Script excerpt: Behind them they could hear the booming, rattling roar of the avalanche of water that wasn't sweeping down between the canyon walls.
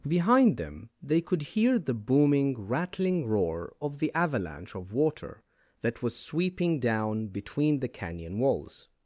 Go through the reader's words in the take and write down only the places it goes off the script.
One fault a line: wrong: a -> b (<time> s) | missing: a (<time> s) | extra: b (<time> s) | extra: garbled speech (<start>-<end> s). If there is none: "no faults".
wrong: wasn't -> was (6.0 s)